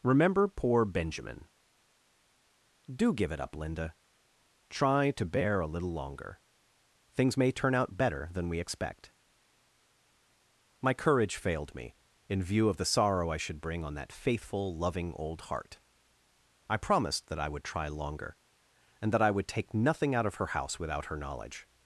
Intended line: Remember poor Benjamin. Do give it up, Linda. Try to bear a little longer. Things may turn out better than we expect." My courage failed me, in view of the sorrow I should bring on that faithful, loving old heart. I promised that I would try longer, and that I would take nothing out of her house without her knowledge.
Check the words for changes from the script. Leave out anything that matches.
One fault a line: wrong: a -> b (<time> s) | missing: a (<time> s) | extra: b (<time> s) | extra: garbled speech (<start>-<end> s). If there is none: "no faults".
no faults